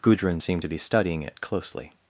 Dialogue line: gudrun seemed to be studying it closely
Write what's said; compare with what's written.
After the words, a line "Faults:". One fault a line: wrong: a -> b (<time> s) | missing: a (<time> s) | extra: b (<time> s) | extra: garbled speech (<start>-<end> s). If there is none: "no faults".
gudrun seemed to be studying it closely
Faults:
no faults